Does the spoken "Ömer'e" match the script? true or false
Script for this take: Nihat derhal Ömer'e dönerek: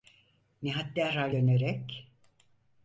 false